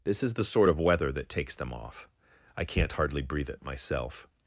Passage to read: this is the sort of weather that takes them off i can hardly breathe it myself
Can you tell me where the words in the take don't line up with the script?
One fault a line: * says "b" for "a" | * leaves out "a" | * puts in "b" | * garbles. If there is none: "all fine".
* says "can't" for "can"